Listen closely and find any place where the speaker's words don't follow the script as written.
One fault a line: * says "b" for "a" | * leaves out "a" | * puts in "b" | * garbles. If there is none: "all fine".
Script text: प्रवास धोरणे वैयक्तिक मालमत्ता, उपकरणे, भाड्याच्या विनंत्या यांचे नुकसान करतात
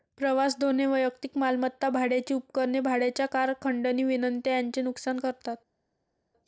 * puts in "भाड्याची"
* puts in "कार खंडणी"